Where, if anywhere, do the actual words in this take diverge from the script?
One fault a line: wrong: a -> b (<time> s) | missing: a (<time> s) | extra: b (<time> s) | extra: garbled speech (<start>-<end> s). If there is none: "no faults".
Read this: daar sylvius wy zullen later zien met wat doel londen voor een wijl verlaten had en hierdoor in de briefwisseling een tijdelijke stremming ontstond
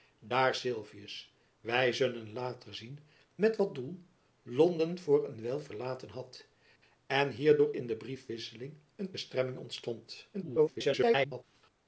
missing: tijdelijke (9.2 s)
extra: garbled speech (10.3-11.4 s)